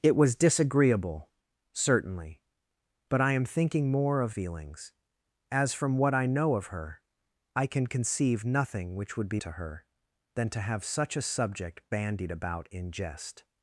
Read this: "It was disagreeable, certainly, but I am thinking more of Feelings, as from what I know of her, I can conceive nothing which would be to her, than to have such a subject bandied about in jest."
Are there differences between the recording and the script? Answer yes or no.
no